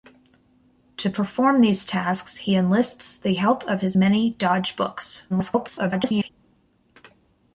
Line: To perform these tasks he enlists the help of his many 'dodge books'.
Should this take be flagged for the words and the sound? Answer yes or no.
yes